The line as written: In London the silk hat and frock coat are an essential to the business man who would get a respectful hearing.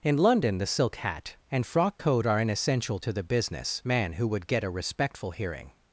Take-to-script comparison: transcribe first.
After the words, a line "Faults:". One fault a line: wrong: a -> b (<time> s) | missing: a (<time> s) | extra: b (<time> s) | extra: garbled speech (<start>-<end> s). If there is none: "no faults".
In London the silk hat and frock coat are an essential to the business man who would get a respectful hearing.
Faults:
no faults